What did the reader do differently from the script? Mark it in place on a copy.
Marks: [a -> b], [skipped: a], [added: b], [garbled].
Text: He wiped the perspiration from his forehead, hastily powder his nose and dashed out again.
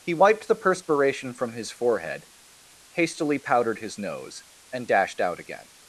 He wiped the perspiration from his forehead, hastily [powder -> powdered] his nose and dashed out again.